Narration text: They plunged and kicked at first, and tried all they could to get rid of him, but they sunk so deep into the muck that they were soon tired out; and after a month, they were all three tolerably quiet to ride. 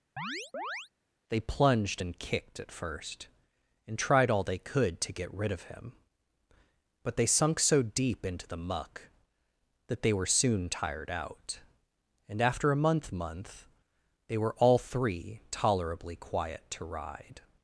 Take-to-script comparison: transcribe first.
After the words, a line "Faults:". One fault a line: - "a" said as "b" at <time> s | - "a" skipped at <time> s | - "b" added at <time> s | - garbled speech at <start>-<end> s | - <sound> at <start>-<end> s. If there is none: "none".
They plunged and kicked at first, and tried all they could to get rid of him, but they sunk so deep into the muck that they were soon tired out; and after a month month, they were all three tolerably quiet to ride.
Faults:
- chirp at 0.2-0.9 s
- "month" added at 13.1 s